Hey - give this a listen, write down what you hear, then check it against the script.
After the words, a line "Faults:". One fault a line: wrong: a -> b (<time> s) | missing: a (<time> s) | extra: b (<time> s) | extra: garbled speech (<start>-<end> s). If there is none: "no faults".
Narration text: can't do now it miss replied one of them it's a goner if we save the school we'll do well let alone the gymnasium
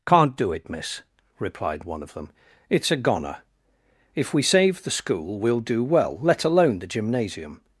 can't do it miss replied one of them it's a goner if we save the school we'll do well let alone the gymnasium
Faults:
missing: now (0.5 s)